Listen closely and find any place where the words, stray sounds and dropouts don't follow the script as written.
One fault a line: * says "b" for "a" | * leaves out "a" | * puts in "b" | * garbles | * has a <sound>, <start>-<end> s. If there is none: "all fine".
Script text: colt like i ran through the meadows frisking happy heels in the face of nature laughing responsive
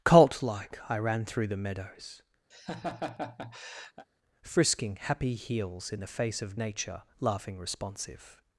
* has a laugh, 2.5-4.1 s